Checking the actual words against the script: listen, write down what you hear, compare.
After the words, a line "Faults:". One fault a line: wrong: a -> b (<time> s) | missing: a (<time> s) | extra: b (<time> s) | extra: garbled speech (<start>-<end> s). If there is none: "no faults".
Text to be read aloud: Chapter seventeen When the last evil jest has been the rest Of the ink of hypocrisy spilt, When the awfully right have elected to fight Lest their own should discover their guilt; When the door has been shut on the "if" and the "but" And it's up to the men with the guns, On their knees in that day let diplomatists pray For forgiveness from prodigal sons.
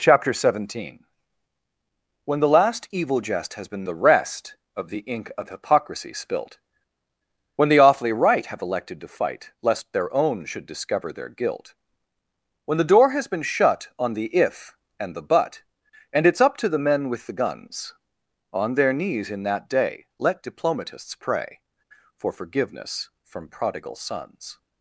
Chapter seventeen When the last evil jest has been the rest Of the ink of hypocrisy spilt, When the awfully right have elected to fight Lest their own should discover their guilt; When the door has been shut on the "if" and the "but" And it's up to the men with the guns, On their knees in that day let diplomatists pray For forgiveness from prodigal sons.
Faults:
no faults